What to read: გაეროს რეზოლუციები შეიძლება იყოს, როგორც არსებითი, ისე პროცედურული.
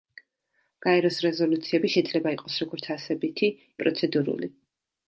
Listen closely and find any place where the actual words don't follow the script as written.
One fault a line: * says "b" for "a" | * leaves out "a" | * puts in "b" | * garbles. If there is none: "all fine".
* leaves out "ისე"